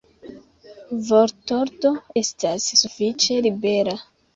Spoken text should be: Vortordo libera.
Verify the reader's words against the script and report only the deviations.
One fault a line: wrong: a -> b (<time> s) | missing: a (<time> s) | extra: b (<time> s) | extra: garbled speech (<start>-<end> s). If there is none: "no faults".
extra: estas sufiĉe (2.2 s)